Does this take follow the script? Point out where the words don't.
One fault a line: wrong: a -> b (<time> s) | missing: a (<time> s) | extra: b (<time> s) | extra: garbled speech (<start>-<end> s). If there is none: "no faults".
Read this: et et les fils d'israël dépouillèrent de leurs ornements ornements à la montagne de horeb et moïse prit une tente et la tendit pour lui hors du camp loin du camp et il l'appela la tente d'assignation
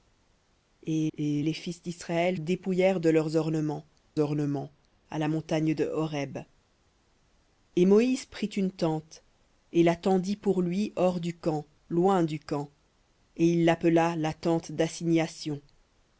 no faults